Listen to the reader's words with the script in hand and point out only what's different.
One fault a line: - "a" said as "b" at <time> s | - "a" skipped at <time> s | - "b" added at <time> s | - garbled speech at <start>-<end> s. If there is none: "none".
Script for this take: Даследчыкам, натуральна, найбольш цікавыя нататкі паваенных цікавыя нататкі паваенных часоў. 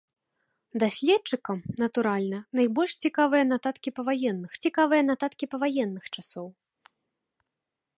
none